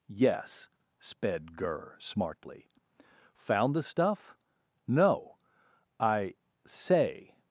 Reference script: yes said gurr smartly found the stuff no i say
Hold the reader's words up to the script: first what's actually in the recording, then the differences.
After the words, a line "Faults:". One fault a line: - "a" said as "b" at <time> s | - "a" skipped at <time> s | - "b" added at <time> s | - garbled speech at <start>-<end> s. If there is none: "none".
yes sped gurr smartly found the stuff no i say
Faults:
- "said" said as "sped" at 1.0 s